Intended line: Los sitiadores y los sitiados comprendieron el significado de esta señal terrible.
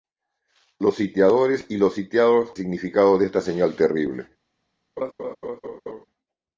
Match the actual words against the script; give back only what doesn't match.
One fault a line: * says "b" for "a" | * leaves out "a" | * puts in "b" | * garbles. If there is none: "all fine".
* leaves out "comprendieron el"